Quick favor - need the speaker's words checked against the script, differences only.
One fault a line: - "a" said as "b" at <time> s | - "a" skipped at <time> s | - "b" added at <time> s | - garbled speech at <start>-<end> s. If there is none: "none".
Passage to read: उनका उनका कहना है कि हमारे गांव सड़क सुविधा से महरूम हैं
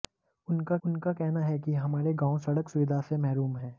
none